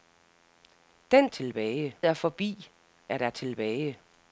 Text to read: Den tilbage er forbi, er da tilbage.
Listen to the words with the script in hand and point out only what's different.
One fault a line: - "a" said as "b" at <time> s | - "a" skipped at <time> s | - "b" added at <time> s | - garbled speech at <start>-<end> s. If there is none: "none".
none